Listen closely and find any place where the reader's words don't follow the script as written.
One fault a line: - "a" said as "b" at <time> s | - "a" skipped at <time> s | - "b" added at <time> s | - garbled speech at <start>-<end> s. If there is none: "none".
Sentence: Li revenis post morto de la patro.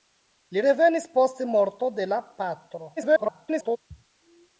- garbled speech at 3.0-3.8 s